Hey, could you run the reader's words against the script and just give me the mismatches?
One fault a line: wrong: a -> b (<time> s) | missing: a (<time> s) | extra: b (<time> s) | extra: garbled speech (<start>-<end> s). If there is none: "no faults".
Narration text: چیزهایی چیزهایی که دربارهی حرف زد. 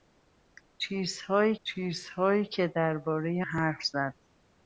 no faults